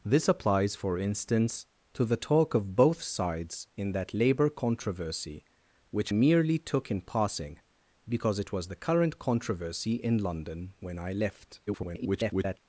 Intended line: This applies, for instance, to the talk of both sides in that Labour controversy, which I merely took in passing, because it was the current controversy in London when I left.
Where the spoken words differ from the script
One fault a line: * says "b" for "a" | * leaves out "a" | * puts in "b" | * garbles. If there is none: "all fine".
* leaves out "I"
* garbles